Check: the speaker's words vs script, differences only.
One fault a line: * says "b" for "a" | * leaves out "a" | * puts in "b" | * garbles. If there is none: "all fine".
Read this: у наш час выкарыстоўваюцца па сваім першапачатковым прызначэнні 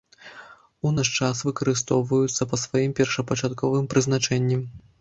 all fine